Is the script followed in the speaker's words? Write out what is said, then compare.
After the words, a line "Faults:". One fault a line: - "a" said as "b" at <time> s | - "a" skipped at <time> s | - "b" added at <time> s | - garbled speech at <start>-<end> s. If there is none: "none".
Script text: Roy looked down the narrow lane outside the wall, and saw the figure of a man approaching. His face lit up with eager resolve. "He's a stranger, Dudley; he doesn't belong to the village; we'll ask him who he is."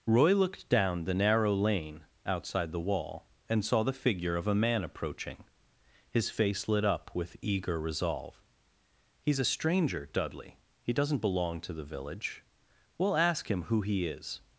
Roy looked down the narrow lane outside the wall, and saw the figure of a man approaching. His face lit up with eager resolve. "He's a stranger, Dudley; he doesn't belong to the village; we'll ask him who he is."
Faults:
none